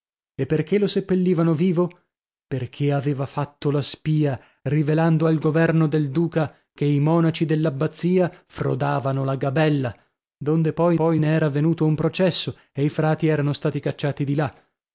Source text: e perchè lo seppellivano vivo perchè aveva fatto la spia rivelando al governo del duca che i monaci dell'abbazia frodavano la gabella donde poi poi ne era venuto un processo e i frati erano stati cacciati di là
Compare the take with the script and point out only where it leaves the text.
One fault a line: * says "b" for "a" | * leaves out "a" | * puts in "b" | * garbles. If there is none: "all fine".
all fine